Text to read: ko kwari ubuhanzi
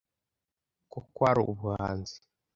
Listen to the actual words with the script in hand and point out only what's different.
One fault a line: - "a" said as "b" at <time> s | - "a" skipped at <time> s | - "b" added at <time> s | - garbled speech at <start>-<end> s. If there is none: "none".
none